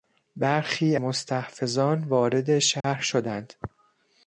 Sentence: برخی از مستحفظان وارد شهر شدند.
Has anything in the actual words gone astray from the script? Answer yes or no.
yes